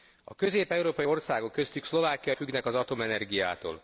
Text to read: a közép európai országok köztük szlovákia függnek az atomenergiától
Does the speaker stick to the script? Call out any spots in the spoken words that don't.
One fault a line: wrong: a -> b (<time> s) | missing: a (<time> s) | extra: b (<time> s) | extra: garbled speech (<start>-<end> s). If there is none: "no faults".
no faults